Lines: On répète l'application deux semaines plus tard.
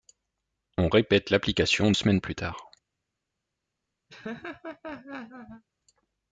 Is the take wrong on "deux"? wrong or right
wrong